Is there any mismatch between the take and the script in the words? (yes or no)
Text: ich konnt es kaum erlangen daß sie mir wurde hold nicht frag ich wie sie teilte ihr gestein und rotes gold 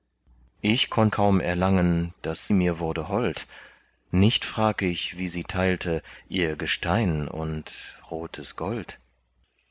yes